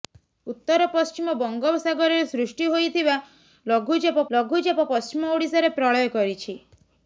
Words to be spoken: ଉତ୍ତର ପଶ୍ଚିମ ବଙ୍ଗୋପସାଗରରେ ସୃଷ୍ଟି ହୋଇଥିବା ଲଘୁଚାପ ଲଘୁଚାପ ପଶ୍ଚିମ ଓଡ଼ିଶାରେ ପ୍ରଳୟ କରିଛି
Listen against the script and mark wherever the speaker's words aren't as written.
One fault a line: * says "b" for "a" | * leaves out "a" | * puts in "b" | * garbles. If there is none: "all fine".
all fine